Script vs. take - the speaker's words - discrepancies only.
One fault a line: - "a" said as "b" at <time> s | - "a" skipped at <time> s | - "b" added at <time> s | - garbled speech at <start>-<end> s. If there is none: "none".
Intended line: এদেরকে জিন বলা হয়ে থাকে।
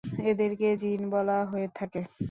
none